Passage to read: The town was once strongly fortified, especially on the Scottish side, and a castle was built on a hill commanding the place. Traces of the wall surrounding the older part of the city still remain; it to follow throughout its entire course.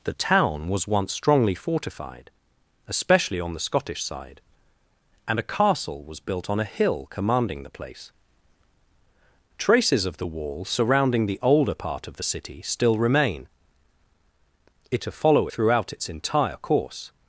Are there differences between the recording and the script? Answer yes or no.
no